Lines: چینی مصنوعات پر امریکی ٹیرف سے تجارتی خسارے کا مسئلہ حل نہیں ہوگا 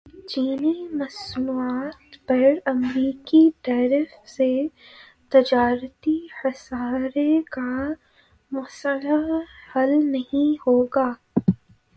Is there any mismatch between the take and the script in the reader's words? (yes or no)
no